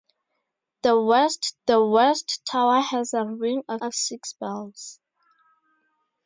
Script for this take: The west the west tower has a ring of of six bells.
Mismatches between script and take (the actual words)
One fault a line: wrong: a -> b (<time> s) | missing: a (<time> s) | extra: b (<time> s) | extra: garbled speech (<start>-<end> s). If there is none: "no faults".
no faults